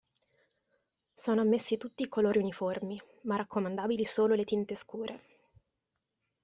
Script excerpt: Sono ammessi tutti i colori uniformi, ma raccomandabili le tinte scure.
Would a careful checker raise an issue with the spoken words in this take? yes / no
yes